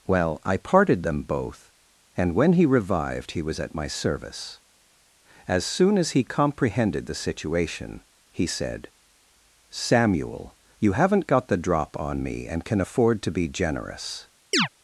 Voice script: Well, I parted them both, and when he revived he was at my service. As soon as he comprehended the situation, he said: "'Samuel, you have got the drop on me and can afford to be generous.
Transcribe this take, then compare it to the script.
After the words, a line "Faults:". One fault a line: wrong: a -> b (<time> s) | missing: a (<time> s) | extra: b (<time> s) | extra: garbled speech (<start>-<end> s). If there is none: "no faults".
Well, I parted them both, and when he revived he was at my service. As soon as he comprehended the situation, he said: "'Samuel, you haven't got the drop on me and can afford to be generous.
Faults:
wrong: have -> haven't (10.9 s)